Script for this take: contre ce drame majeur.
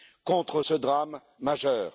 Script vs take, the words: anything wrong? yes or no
no